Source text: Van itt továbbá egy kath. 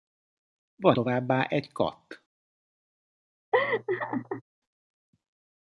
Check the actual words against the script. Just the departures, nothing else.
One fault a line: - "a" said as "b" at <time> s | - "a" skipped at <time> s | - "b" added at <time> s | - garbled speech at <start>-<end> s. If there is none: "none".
- "itt" skipped at 1.0 s